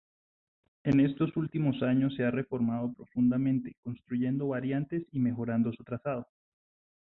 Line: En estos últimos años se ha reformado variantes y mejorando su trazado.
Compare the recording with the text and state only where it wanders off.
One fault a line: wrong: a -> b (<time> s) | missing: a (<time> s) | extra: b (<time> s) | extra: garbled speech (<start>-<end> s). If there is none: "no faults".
extra: profundamente construyendo (3.0 s)